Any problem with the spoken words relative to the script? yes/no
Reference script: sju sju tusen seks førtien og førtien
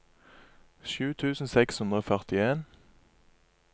yes